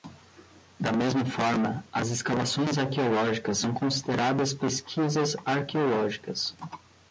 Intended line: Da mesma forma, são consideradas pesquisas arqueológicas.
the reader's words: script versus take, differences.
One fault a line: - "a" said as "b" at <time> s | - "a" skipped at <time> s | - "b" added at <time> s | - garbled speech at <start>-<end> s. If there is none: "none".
- "as escavações arqueológicas" added at 1.9 s